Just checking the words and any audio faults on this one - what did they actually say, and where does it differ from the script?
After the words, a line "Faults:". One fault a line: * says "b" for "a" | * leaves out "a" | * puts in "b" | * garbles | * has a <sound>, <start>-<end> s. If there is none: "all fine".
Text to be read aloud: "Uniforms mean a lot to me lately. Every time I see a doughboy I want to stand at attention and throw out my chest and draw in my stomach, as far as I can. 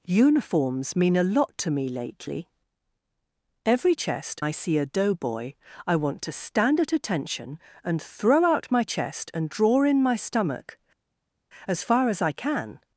"Uniforms mean a lot to me lately. Every chest I see a doughboy I want to stand at attention and throw out my chest and draw in my stomach, as far as I can.
Faults:
* says "chest" for "time"